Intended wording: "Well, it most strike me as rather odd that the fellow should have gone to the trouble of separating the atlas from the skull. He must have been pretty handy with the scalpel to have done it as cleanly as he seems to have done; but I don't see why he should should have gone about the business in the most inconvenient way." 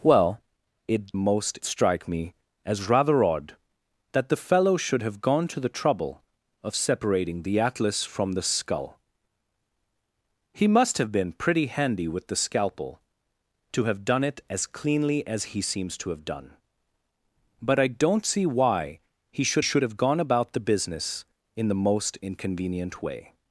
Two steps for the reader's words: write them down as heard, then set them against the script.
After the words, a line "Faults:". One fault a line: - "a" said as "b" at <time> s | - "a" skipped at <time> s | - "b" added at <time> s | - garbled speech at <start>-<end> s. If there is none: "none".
"Well, it most strike me as rather odd that the fellow should have gone to the trouble of separating the atlas from the skull. He must have been pretty handy with the scalpel to have done it as cleanly as he seems to have done; but I don't see why he should should have gone about the business in the most inconvenient way."
Faults:
none